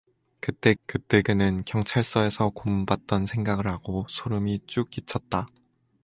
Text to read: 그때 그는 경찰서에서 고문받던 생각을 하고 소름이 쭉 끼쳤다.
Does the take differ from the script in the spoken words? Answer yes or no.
yes